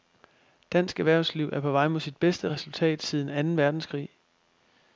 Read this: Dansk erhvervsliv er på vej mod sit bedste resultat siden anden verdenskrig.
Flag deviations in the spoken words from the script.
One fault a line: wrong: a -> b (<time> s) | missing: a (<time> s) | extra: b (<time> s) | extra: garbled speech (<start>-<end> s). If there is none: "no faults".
no faults